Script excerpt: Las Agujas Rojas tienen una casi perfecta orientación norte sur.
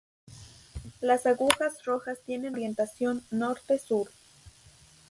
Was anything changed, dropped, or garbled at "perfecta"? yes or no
yes